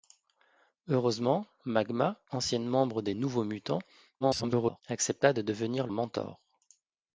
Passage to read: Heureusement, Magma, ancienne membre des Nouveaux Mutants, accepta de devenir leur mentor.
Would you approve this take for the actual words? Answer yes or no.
no